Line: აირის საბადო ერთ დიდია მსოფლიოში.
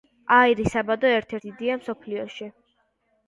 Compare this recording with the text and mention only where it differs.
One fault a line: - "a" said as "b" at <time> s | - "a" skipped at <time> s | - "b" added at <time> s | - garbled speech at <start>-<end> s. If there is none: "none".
none